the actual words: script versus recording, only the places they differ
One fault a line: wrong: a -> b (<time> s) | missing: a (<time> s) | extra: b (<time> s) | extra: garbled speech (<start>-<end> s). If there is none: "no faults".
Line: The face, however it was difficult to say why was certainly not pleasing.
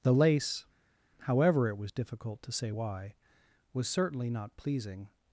wrong: face -> lace (0.1 s)